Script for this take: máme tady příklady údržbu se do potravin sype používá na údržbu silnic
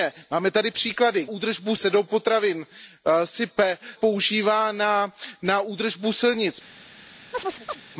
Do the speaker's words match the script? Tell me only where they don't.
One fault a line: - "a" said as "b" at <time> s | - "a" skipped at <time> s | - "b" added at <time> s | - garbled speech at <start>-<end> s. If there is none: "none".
none